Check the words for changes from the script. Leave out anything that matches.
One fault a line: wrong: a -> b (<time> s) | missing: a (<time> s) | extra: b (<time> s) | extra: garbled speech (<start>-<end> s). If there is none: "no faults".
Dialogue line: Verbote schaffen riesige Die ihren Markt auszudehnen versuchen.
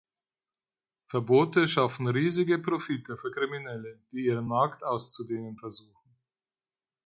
extra: Profite für Kriminelle (2.6 s)